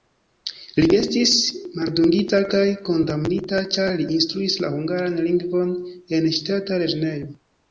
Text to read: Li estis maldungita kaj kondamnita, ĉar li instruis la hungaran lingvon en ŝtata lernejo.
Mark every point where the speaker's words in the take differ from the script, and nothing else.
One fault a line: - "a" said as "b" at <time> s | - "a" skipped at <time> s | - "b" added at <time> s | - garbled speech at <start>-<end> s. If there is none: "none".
none